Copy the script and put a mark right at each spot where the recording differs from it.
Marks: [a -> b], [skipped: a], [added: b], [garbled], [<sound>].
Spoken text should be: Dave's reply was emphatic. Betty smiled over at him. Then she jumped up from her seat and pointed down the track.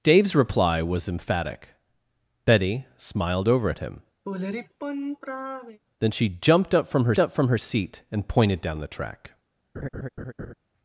Dave's reply was emphatic. Betty smiled over at him. [sigh] Then she jumped up from her [added: up from her] seat and pointed down the track. [laugh]